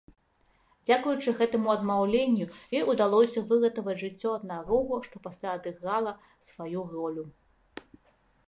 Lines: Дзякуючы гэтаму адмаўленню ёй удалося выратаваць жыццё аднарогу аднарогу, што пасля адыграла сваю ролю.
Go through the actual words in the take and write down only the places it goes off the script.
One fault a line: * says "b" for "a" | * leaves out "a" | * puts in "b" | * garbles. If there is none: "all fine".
* leaves out "аднарогу"